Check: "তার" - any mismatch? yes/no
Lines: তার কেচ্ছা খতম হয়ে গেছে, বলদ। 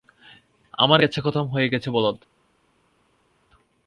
yes